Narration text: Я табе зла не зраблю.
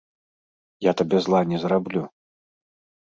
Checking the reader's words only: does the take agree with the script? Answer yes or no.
yes